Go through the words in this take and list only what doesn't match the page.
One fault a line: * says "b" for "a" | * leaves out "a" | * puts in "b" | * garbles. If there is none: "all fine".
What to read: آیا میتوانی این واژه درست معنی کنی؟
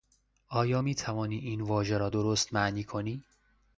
* puts in "را"